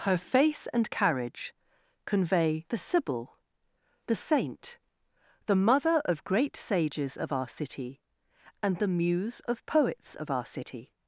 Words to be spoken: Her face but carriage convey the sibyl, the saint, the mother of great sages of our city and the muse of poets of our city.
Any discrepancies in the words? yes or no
yes